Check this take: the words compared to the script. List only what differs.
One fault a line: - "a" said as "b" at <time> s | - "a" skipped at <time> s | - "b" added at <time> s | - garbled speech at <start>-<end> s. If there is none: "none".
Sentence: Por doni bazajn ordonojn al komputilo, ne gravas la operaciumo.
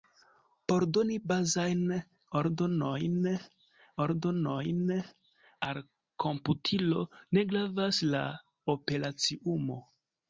- "ordonojn" added at 4.1 s